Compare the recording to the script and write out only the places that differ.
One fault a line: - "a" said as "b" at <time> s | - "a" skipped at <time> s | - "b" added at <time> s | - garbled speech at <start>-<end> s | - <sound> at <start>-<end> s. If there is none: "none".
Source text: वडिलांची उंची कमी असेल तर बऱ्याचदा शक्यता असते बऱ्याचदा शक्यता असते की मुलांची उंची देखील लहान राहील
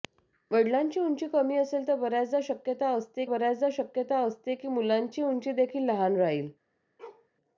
- bark at 7.0-7.3 s